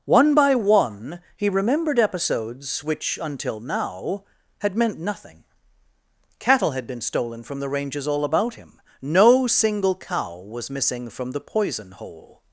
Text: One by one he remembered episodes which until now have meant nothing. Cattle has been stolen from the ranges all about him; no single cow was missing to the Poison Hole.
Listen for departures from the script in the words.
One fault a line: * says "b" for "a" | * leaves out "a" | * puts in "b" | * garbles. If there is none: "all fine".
* says "had" for "have"
* says "had" for "has"
* says "from" for "to"